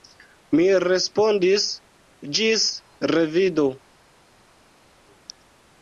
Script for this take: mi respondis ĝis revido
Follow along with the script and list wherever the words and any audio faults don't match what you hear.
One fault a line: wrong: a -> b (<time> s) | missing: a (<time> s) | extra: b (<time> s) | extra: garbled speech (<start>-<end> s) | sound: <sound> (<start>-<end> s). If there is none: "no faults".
no faults